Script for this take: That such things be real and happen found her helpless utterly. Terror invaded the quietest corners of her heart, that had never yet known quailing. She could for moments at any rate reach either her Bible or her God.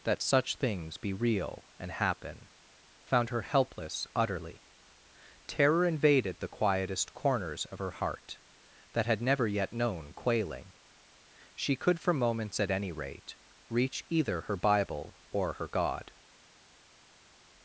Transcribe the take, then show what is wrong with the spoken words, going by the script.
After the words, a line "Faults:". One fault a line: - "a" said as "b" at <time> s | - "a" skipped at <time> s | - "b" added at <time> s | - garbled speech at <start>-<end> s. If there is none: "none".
That such things be real and happen found her helpless utterly. Terror invaded the quietest corners of her heart, that had never yet known quailing. She could for moments at any rate reach either her Bible or her God.
Faults:
none